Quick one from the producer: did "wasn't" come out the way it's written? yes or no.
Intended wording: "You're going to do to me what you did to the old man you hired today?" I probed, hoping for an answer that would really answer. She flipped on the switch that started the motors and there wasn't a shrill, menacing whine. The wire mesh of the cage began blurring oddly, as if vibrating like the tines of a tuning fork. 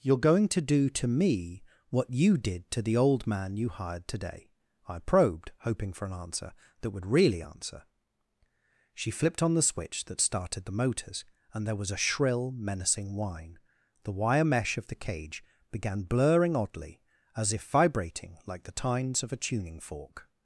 no